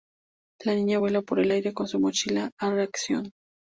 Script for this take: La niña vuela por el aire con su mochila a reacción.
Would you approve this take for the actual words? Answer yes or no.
yes